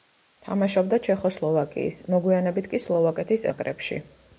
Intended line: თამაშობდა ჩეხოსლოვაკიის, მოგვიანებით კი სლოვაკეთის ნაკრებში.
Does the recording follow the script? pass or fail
pass